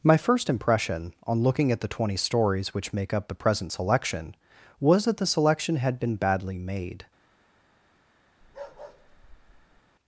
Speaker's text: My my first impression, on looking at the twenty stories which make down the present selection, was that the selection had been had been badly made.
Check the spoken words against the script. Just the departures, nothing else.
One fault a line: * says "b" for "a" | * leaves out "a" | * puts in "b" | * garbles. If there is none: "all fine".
* leaves out "my"
* says "up" for "down"
* leaves out "had been"